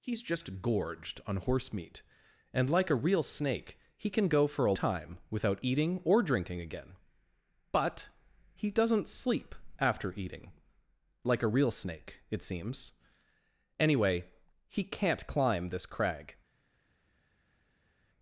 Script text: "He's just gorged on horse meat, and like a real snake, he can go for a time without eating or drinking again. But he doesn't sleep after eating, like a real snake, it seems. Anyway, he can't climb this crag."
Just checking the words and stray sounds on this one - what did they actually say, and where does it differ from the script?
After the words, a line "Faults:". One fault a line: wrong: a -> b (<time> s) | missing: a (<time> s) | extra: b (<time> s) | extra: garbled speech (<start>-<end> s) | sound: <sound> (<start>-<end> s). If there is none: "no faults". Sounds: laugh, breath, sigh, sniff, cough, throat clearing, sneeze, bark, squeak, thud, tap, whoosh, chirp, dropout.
"He's just gorged on horse meat, and like a real snake, he can go for a time without eating or drinking again. But he doesn't sleep after eating, like a real snake, it seems. Anyway, he can't climb this crag."
Faults:
no faults